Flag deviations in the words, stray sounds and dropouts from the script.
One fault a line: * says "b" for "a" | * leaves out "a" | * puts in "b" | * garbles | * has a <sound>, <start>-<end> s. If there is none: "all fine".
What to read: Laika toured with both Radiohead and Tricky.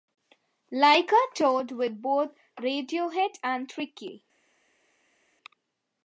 all fine